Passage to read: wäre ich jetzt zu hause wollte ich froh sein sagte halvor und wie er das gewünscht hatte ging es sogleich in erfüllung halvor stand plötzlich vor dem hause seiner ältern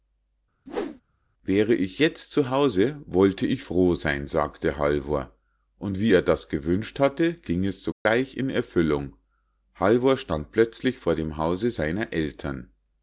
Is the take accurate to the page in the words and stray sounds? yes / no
no